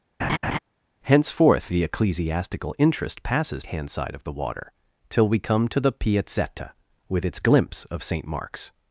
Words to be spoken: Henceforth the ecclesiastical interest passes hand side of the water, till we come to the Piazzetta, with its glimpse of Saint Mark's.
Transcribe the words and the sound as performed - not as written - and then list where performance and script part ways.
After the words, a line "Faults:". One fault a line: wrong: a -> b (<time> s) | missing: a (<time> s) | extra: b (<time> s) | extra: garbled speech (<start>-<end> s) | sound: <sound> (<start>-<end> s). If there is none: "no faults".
Henceforth the ecclesiastical interest passes hand side of the water, till we come to the Piazzetta, with its glimpse of Saint Mark's.
Faults:
sound: laugh (0.2-0.6 s)